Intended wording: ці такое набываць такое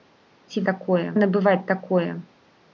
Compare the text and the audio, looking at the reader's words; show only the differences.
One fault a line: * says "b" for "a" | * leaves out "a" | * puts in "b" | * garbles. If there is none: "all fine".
all fine